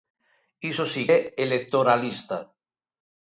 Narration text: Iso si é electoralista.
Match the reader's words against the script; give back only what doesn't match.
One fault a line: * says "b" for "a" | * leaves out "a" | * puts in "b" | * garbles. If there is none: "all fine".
all fine